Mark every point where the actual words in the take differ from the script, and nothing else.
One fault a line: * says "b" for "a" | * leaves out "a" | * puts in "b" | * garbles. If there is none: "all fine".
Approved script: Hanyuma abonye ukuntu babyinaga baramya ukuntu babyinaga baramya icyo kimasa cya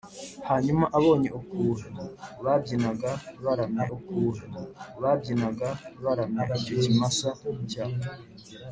all fine